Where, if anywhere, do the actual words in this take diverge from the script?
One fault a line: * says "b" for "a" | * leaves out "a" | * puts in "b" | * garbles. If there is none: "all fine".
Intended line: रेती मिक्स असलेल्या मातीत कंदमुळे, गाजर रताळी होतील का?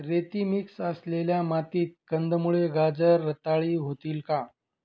all fine